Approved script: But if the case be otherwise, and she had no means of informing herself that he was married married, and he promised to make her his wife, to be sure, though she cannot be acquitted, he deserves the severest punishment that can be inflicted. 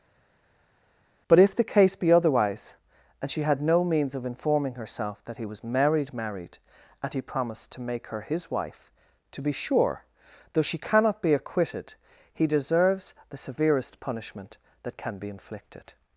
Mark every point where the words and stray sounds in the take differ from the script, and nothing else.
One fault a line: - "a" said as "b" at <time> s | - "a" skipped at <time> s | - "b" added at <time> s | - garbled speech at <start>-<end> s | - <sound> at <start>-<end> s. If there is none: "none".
none